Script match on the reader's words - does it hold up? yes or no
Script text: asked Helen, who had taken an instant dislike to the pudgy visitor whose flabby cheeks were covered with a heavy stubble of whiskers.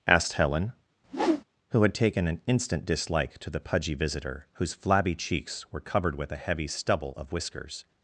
yes